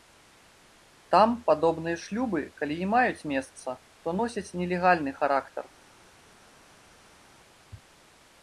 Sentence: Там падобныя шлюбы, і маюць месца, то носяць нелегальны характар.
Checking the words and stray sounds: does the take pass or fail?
fail